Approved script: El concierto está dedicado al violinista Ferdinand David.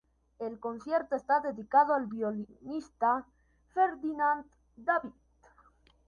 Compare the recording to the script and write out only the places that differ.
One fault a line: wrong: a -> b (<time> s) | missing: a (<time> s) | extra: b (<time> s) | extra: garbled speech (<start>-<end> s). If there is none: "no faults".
no faults